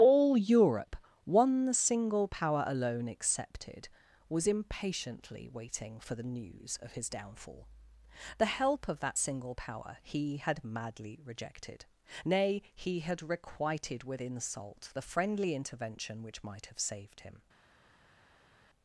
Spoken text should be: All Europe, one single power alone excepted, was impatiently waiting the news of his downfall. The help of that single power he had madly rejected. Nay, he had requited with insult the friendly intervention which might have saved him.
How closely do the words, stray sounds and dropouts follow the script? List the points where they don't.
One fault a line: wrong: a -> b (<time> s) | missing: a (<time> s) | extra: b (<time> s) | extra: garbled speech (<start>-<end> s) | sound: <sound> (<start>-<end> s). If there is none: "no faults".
extra: for (6.0 s)